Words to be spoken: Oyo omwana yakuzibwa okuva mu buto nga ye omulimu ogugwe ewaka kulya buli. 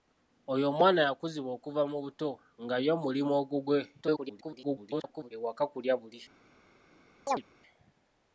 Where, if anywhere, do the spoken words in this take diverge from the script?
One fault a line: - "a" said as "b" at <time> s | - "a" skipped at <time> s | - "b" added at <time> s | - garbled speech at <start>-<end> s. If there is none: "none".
- garbled speech at 4.0-5.3 s